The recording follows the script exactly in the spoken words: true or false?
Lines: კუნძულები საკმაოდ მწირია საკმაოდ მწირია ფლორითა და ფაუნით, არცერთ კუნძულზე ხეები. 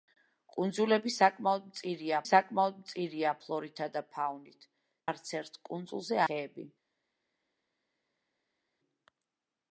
true